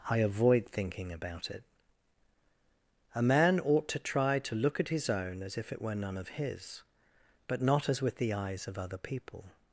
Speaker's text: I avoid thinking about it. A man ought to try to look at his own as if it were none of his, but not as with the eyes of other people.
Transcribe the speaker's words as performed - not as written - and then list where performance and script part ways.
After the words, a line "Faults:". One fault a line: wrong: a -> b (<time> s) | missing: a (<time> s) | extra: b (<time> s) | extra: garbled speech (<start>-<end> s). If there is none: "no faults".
I avoid thinking about it. A man ought to try to look at his own as if it were none of his, but not as with the eyes of other people.
Faults:
no faults